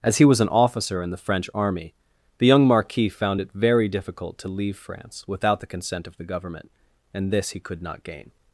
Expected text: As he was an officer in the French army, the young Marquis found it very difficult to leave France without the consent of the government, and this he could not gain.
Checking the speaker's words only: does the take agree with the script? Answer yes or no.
yes